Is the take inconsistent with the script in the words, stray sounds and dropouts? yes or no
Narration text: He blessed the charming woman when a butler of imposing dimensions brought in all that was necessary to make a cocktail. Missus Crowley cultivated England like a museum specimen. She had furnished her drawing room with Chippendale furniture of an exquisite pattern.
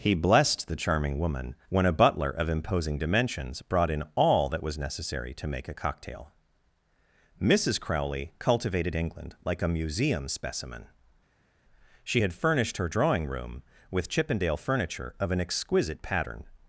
no